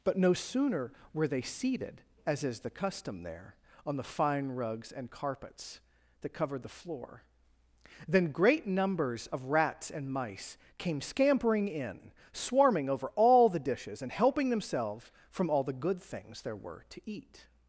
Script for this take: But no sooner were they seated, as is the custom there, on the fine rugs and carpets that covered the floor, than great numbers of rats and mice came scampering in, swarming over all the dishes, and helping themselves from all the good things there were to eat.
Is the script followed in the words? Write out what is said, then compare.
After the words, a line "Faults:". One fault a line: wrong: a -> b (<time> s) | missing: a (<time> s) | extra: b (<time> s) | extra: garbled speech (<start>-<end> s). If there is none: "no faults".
But no sooner were they seated, as is the custom there, on the fine rugs and carpets that covered the floor, than great numbers of rats and mice came scampering in, swarming over all the dishes, and helping themselves from all the good things there were to eat.
Faults:
no faults